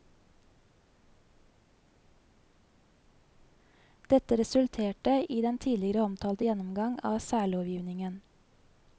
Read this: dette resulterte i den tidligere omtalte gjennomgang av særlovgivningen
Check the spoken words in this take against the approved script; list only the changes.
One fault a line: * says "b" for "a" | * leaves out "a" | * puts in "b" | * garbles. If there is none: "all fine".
all fine